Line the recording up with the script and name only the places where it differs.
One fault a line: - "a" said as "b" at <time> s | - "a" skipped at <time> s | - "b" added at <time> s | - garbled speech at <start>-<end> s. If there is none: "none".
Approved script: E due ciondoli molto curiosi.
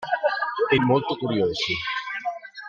- "due ciondoli" skipped at 0.8 s